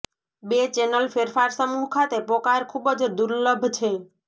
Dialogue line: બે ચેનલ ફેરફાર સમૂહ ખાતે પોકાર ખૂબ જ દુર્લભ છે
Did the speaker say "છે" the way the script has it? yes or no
yes